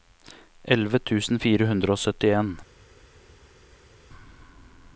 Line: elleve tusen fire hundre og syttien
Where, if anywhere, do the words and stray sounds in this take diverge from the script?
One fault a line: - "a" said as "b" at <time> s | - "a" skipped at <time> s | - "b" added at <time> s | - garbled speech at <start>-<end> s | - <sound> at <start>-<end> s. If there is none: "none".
none